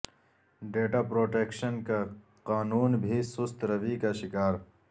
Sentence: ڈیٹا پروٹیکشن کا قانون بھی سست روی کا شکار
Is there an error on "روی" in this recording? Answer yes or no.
no